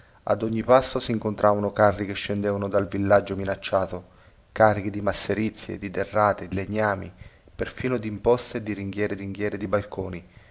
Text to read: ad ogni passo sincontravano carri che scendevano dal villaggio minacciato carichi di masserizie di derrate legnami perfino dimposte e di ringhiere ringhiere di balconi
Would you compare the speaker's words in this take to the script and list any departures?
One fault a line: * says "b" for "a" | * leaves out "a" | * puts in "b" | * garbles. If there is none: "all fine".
all fine